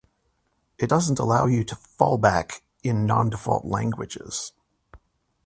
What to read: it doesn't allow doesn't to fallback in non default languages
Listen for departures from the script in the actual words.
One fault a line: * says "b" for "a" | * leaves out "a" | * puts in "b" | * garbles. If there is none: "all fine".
* says "you" for "doesn't"